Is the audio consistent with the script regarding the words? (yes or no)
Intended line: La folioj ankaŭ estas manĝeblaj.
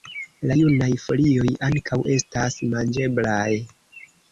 no